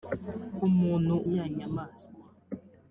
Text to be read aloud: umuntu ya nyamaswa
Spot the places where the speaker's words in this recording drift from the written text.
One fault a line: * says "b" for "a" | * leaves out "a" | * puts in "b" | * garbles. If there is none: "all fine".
all fine